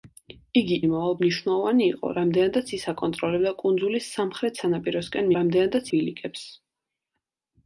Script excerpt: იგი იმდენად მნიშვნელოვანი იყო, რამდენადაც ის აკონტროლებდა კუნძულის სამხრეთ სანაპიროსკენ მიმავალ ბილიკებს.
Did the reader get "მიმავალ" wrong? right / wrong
wrong